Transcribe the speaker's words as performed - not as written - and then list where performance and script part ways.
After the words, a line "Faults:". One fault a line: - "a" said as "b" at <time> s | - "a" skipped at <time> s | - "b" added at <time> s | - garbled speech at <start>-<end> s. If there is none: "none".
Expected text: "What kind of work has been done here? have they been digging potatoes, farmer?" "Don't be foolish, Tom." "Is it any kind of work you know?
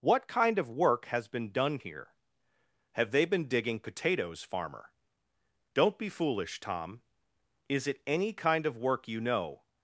"What kind of work has been done here? have they been digging potatoes, farmer?" "Don't be foolish, Tom." "Is it any kind of work you know?
Faults:
none